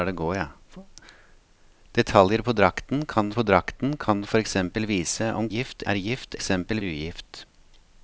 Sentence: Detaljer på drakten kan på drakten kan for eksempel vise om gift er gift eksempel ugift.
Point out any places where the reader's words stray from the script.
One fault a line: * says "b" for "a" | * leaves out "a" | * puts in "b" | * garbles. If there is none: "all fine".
all fine